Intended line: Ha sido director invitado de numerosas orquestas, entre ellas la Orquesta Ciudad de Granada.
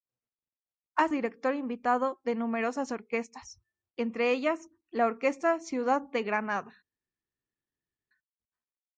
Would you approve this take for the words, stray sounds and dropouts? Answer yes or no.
no